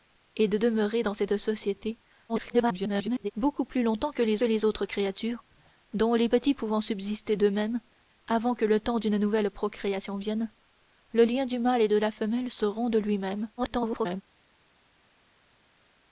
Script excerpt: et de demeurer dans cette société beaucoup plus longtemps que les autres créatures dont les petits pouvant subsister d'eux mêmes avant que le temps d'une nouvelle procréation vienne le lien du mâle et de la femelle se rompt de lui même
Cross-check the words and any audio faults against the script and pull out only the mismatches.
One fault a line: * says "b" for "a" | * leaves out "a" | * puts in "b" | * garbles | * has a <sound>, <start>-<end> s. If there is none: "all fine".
* garbles
* puts in "les"
* garbles